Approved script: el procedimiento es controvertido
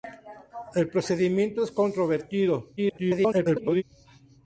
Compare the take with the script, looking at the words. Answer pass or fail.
fail